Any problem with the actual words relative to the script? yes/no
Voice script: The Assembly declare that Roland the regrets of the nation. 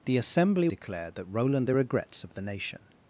no